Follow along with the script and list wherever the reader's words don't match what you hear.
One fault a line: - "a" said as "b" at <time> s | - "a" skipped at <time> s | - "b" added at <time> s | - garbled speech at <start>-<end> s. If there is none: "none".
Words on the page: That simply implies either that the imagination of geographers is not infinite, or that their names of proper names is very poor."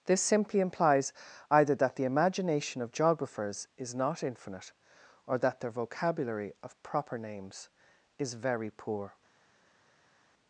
- "That" said as "This" at 0.1 s
- "names" said as "vocabulary" at 5.7 s